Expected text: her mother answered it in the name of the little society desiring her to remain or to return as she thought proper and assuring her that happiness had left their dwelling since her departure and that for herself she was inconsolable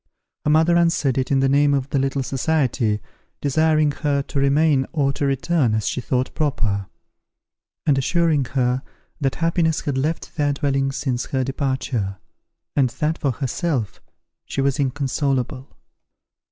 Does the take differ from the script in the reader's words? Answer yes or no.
no